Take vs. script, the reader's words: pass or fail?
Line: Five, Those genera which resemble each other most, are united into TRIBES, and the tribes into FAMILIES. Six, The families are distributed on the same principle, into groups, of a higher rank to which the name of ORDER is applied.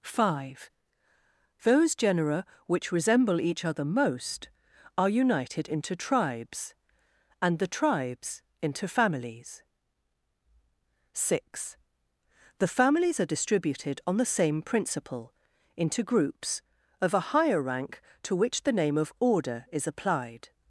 pass